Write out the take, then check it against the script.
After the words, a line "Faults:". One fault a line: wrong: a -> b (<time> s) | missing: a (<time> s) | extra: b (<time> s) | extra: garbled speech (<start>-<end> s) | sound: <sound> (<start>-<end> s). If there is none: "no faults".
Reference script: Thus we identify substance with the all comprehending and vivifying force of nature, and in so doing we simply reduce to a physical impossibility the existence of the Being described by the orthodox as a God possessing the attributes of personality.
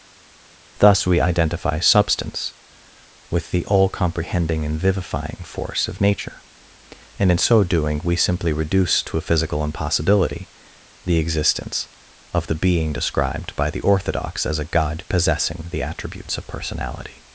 Thus we identify substance with the all comprehending and vivifying force of nature, and in so doing we simply reduce to a physical impossibility the existence of the Being described by the orthodox as a God possessing the attributes of personality.
Faults:
no faults